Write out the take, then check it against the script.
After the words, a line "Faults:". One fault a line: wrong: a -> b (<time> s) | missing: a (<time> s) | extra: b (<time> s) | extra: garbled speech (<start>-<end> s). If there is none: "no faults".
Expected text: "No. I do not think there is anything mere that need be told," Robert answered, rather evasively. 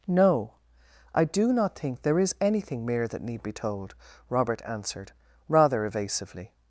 "No. I do not think there is anything mere that need be told," Robert answered, rather evasively.
Faults:
no faults